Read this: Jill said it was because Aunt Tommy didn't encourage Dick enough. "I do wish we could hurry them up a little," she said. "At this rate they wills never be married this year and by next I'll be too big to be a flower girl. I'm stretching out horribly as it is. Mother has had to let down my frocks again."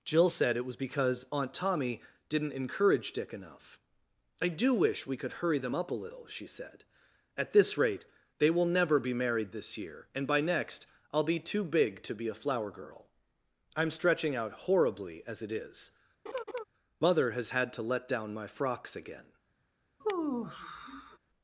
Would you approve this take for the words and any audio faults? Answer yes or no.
no